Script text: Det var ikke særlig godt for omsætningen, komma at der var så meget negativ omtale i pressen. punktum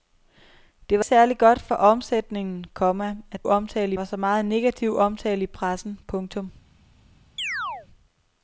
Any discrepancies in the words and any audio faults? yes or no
yes